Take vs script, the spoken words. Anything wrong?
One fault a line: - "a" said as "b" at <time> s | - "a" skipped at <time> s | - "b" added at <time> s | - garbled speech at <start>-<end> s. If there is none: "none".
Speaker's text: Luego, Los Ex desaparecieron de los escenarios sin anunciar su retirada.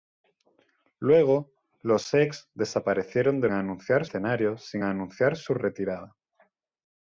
- "los" said as "anunciar" at 3.5 s